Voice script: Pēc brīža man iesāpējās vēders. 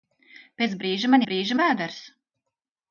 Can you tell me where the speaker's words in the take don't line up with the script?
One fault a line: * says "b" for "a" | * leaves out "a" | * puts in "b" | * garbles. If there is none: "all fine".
* says "brīža" for "iesāpējās"